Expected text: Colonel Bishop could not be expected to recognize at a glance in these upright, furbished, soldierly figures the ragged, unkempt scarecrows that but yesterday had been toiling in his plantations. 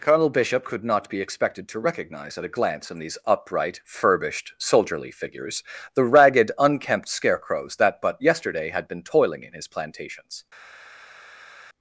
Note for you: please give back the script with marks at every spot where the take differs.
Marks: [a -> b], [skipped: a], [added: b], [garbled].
Colonel Bishop could not be expected to recognize at a glance in these upright, furbished, soldierly figures the ragged, unkempt scarecrows that but yesterday had been toiling in his plantations.